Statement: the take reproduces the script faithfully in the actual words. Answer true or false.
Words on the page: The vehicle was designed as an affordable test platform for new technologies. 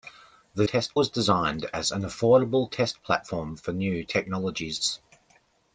false